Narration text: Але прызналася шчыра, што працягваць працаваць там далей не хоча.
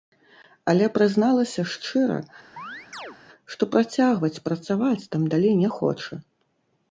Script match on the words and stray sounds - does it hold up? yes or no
no